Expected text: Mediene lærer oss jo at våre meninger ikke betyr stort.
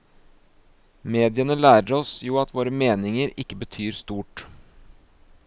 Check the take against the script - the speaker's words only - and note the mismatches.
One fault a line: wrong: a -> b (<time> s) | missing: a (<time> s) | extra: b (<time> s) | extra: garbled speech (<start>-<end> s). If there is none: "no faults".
no faults